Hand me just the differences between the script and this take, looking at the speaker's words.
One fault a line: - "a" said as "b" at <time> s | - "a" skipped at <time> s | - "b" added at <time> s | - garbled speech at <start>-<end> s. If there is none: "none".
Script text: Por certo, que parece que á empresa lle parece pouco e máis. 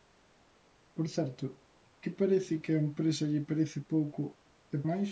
none